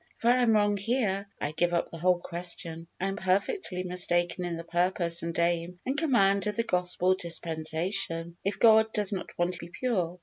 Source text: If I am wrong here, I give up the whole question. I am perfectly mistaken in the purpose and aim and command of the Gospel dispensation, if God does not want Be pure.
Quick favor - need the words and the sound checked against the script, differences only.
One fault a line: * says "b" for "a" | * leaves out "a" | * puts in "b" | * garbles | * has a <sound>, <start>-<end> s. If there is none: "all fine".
all fine